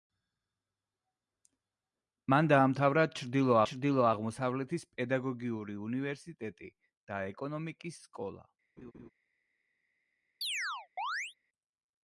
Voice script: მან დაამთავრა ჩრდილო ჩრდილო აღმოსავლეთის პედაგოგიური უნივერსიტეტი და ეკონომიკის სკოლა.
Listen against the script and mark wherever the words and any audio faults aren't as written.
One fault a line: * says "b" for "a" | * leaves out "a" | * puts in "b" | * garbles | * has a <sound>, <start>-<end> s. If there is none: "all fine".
* has a laugh, 8.8-9.1 s
* has a chirp, 10.4-11.3 s